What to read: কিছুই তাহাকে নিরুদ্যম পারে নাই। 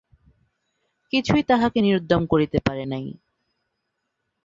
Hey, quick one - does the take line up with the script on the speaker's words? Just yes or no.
no